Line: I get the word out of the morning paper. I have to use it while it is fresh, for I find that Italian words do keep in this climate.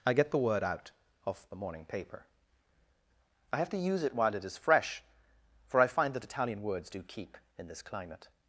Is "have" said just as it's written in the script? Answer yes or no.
yes